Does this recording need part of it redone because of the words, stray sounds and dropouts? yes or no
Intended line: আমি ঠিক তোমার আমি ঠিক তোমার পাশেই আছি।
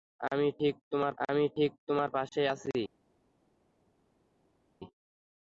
no